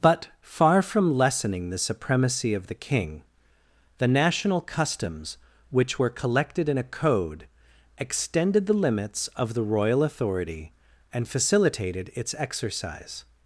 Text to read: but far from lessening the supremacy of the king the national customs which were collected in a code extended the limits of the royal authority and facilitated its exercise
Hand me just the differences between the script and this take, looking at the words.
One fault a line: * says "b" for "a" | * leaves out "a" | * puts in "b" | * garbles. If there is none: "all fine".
all fine